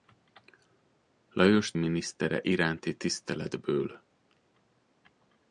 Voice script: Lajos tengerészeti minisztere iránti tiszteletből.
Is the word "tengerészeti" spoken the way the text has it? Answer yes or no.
no